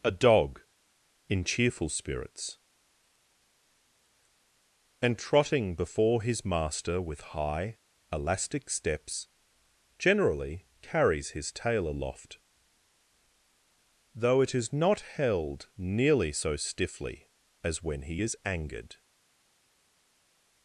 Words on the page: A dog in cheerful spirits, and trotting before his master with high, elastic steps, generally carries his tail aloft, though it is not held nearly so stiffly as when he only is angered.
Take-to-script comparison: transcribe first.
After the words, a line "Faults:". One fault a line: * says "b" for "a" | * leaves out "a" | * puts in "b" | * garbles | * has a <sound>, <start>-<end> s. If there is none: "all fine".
A dog in cheerful spirits, and trotting before his master with high, elastic steps, generally carries his tail aloft, though it is not held nearly so stiffly as when he is angered.
Faults:
* leaves out "only"